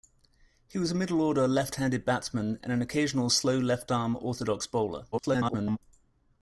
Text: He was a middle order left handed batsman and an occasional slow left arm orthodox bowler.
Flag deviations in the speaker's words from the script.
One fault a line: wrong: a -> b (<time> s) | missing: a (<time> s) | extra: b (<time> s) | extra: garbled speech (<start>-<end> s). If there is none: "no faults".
extra: garbled speech (5.1-5.8 s)